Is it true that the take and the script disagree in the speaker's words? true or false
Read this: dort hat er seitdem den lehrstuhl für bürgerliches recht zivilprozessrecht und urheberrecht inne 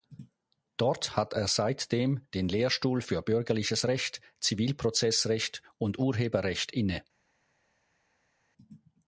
false